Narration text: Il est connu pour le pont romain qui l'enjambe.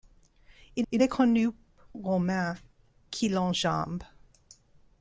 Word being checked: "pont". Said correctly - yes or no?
no